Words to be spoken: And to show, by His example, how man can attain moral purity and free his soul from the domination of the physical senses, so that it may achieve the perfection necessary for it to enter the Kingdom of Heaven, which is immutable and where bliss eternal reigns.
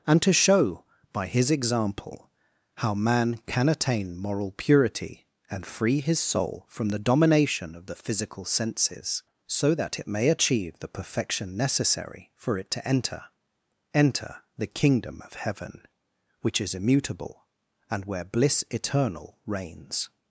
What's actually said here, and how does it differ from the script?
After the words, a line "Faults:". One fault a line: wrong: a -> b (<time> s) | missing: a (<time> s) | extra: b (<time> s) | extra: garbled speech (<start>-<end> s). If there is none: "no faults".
And to show, by His example, how man can attain moral purity and free his soul from the domination of the physical senses, so that it may achieve the perfection necessary for it to enter enter the Kingdom of Heaven, which is immutable and where bliss eternal reigns.
Faults:
extra: enter (13.9 s)